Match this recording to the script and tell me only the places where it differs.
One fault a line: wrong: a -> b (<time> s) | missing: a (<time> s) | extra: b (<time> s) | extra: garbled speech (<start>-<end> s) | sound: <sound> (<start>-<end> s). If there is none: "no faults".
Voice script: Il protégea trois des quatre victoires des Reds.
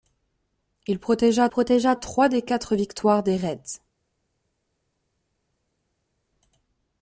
extra: protégea (1.5 s)